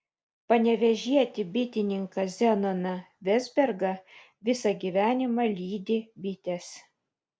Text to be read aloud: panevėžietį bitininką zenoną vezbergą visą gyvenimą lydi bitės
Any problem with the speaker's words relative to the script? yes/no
no